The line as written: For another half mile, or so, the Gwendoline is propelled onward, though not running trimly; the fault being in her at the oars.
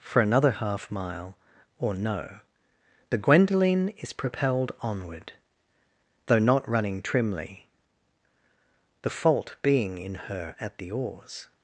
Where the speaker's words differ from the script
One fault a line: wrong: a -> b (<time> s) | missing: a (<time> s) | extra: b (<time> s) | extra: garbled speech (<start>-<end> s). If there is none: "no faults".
wrong: so -> no (1.9 s)